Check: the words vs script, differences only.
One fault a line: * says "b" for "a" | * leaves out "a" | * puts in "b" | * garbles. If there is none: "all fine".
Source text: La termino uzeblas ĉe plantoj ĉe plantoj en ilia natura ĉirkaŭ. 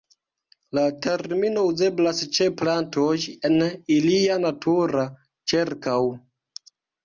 * leaves out "ĉe plantoj"